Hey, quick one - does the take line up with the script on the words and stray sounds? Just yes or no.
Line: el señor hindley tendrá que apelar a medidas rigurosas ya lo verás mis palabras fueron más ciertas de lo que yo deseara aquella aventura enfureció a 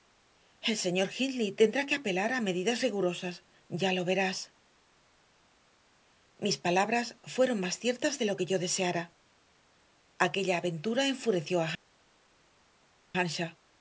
yes